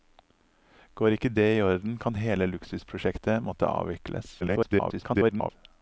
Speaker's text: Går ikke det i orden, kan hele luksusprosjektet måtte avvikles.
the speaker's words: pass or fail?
fail